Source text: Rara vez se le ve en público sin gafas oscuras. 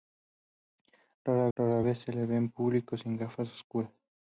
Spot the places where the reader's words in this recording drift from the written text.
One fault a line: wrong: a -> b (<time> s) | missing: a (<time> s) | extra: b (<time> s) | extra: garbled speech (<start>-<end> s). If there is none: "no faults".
extra: rara (1.5 s)